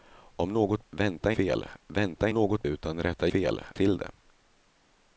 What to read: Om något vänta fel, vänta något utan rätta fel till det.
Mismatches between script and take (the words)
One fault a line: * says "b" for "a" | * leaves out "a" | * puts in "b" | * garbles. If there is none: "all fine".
all fine